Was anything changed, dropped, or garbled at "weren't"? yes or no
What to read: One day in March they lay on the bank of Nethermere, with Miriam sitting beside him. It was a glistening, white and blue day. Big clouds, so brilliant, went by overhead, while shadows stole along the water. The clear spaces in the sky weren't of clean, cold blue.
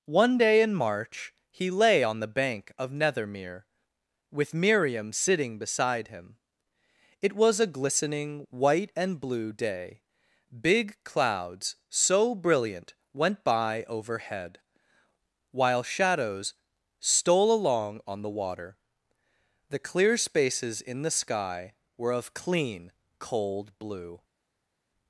yes